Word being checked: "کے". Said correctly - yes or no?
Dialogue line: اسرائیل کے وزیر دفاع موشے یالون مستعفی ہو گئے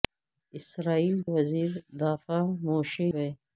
no